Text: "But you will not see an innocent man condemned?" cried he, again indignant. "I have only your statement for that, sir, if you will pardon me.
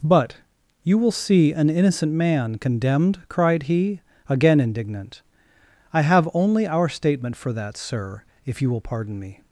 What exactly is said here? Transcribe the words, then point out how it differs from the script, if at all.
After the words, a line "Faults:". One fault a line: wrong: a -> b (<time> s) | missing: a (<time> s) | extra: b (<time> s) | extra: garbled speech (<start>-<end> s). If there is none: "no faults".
"But you will see an innocent man condemned?" cried he, again indignant. "I have only our statement for that, sir, if you will pardon me.
Faults:
missing: not (1.1 s)
wrong: your -> our (6.7 s)